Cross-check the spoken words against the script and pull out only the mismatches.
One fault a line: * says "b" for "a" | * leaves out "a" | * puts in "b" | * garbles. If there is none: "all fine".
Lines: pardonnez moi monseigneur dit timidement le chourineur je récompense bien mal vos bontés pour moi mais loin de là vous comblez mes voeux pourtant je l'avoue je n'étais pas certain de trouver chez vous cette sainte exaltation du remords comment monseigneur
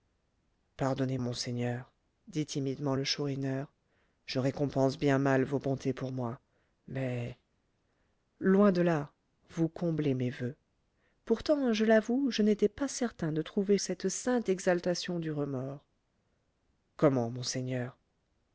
* leaves out "moi"
* leaves out "chez vous"